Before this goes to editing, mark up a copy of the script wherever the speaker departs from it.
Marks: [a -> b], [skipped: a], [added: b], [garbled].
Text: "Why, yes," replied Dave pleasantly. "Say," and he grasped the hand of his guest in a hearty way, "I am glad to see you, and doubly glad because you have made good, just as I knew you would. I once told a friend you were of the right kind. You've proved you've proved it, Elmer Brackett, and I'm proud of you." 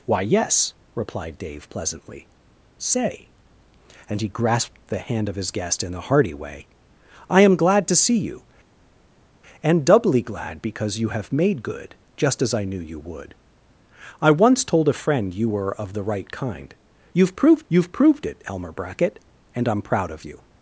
"Why, yes," replied Dave pleasantly. "Say," and he grasped the hand of his guest in a hearty way, "I am glad to see you, and doubly glad because you have made good, just as I knew you would. I once told a friend you were of the right kind. You've proved you've proved it, Elmer Brackett, and I'm proud of you."